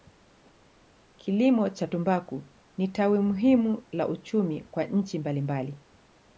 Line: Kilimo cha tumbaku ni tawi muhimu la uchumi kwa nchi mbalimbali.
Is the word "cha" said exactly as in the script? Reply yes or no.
yes